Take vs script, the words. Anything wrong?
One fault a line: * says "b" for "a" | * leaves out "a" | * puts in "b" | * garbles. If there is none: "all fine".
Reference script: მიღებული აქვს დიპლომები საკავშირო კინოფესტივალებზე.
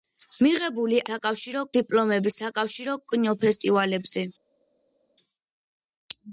* says "საკავშირო" for "აქვს"